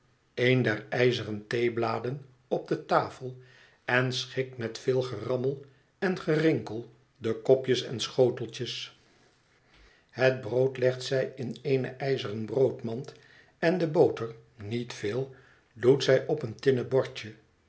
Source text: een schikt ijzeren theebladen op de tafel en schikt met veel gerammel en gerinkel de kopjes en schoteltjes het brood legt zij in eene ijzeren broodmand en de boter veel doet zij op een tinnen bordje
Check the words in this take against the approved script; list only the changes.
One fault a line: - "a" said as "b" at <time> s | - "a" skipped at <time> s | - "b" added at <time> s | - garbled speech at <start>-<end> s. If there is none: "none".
- "schikt" said as "der" at 0.6 s
- "niet" added at 14.6 s